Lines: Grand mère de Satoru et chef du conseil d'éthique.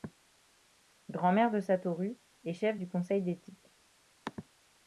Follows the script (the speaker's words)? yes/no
yes